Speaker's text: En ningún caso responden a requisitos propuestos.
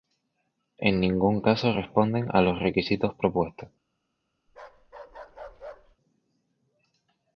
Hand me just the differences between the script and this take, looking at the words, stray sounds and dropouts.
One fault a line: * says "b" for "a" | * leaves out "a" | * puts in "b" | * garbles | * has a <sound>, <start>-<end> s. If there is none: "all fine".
* puts in "los"
* has a bark, 4.5-6.0 s